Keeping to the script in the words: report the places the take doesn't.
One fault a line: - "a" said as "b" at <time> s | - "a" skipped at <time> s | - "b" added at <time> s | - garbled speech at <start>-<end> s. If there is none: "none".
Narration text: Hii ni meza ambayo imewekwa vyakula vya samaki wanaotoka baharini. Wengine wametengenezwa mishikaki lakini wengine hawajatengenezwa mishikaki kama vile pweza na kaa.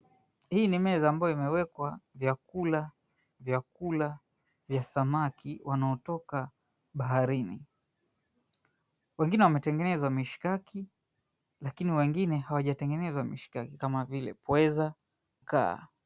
- "vyakula" added at 3.4 s
- "na" skipped at 14.9 s